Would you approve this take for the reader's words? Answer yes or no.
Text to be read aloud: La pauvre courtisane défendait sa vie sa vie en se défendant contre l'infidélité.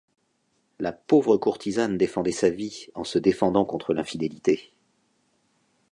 no